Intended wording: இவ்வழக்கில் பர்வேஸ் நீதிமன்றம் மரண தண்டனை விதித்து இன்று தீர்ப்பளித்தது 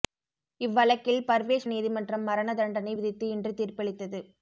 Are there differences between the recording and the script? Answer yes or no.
no